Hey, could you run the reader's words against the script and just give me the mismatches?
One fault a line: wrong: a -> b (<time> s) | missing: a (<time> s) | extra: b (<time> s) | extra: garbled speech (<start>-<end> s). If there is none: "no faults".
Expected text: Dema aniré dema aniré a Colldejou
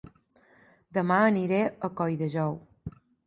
missing: dema aniré (1.6 s)